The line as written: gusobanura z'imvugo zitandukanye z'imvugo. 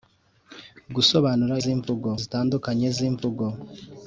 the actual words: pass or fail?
pass